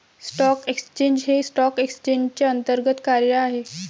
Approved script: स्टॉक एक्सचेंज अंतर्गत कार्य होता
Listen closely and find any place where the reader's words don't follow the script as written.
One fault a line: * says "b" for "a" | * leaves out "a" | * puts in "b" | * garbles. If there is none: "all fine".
* puts in "हे स्टॉक एक्सचेंजचे"
* says "आहे" for "होता"